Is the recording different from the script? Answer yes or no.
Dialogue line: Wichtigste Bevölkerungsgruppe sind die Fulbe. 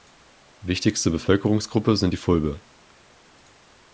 no